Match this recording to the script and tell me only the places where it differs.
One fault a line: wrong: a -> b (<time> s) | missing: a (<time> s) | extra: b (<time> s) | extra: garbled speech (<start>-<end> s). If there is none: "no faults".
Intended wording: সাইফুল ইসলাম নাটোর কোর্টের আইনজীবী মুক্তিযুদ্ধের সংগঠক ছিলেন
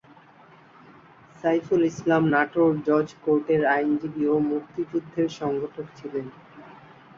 extra: জজ (2.9 s)
extra: ও (4.3 s)